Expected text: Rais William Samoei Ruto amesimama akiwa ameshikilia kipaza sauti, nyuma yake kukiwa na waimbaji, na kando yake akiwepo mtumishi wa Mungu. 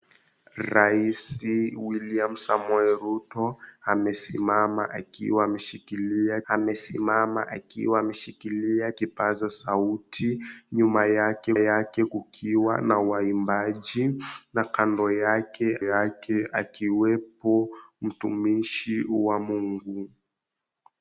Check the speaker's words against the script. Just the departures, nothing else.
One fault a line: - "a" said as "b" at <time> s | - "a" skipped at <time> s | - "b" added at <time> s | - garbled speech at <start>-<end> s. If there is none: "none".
- "amesimama akiwa ameshikilia" added at 6.5 s
- "yake" added at 11.6 s
- "yake" added at 15.8 s